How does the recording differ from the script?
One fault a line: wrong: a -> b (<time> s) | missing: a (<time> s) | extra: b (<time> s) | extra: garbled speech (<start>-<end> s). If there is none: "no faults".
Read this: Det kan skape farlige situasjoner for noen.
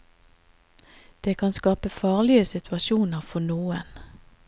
no faults